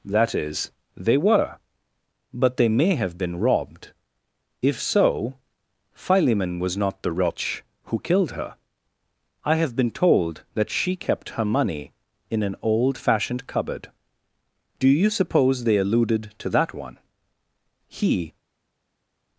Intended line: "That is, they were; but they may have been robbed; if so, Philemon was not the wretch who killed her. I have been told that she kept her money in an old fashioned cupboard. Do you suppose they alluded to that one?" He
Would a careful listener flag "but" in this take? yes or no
no